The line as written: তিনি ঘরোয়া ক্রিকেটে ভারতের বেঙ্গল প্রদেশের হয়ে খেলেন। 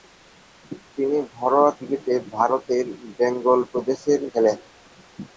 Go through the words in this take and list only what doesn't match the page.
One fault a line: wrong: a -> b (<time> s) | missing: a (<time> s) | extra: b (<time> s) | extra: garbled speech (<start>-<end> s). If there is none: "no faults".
missing: হয়ে (4.2 s)